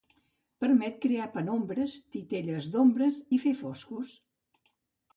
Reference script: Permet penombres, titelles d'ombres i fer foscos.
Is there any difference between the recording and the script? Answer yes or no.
yes